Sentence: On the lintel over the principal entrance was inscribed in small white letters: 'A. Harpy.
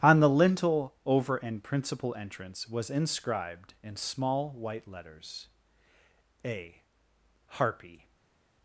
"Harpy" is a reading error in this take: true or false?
false